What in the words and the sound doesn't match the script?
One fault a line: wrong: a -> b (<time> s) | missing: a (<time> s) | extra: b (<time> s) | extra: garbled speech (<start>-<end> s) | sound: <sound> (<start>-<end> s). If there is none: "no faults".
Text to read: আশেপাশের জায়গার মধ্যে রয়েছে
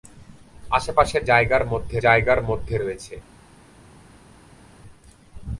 extra: জায়গার মধ্যে (2.0 s)